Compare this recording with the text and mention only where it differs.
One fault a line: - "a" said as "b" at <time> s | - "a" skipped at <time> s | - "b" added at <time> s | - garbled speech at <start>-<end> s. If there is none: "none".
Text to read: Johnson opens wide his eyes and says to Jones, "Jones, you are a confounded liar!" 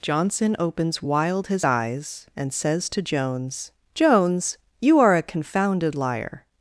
- "wide" said as "wild" at 1.0 s